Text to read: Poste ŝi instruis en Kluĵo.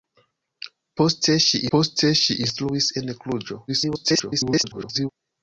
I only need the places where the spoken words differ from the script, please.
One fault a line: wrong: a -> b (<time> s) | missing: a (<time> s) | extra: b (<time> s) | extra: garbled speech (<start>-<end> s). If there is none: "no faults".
extra: poste ŝi (1.7 s)
extra: garbled speech (3.7-5.1 s)